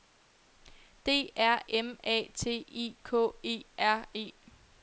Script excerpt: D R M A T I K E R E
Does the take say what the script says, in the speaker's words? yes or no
yes